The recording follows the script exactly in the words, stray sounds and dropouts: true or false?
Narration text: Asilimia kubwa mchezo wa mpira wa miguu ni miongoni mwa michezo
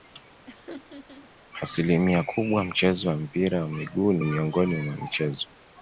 false